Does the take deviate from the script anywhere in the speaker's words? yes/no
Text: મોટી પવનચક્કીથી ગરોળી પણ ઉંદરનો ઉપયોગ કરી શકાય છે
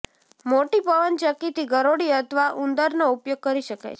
yes